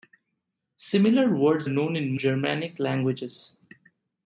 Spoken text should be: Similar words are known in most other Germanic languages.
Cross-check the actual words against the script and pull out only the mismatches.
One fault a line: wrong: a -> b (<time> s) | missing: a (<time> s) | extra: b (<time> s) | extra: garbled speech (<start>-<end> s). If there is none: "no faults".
missing: are (1.7 s)
missing: most other (2.2 s)